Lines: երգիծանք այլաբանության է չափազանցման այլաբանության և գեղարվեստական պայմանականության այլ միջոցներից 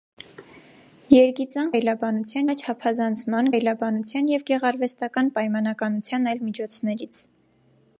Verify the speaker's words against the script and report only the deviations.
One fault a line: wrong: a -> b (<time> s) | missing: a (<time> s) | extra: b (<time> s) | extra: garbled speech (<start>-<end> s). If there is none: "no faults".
no faults